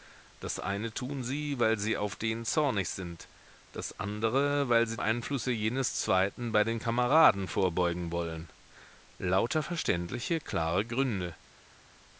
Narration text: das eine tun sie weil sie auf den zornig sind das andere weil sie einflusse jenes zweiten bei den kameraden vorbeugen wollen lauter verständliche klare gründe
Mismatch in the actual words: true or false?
false